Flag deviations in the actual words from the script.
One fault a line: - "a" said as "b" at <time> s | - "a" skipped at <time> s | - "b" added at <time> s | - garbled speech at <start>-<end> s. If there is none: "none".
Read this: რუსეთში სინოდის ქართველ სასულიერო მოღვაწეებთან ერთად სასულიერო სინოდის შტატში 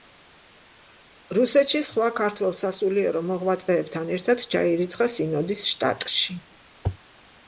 - "სინოდის" said as "სხვა" at 1.9 s
- "სასულიერო" said as "ჩაირიცხა" at 4.5 s